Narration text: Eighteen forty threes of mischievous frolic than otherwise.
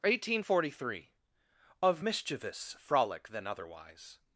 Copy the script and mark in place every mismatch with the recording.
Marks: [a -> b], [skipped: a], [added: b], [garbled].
Eighteen forty [threes -> three] of mischievous frolic than otherwise.